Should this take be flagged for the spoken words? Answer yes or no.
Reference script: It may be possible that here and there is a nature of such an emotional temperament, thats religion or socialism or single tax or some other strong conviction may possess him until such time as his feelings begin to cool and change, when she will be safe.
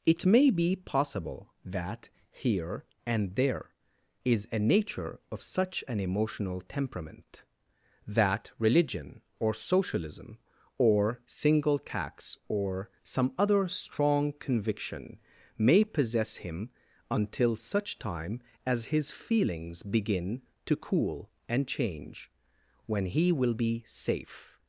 yes